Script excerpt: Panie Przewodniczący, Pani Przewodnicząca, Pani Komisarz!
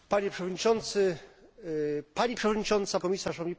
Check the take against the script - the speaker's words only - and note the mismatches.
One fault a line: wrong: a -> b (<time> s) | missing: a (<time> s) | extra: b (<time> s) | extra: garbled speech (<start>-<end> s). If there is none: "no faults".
missing: Pani (3.0 s)